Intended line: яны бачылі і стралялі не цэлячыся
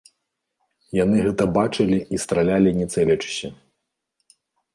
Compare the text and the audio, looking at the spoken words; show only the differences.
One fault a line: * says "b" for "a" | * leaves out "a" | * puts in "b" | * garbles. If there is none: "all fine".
* puts in "гэта"